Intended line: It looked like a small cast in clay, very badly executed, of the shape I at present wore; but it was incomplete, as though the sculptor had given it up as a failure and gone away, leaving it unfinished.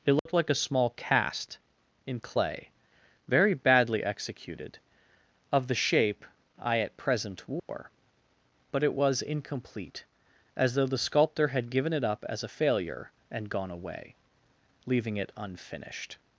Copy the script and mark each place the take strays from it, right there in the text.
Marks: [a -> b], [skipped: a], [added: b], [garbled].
It looked like a small cast in clay, very badly executed, of the shape I at present wore; but it was incomplete, as though the sculptor had given it up as a failure and gone away, leaving it unfinished.